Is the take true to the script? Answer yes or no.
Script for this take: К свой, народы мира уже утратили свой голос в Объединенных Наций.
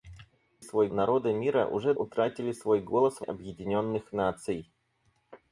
yes